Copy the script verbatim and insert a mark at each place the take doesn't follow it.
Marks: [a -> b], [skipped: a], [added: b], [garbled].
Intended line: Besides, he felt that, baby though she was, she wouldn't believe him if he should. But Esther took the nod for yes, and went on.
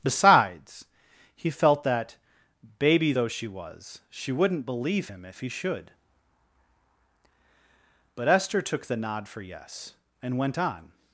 Besides, he felt that, baby though she was, she wouldn't believe him if he should. But Esther took the nod for yes, and went on.